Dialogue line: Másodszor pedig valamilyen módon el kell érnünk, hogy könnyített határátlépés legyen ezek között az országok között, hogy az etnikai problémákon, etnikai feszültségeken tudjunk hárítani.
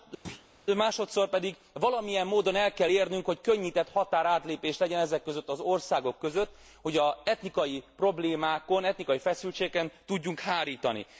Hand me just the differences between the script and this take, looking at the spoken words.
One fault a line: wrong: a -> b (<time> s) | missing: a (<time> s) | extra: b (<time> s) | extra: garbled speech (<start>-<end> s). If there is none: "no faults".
no faults